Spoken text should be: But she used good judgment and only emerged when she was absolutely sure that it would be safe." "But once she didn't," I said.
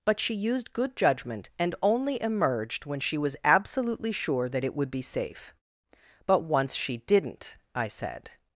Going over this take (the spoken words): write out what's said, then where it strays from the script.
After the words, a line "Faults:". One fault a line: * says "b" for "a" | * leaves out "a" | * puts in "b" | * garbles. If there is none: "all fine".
But she used good judgment and only emerged when she was absolutely sure that it would be safe." "But once she didn't," I said.
Faults:
all fine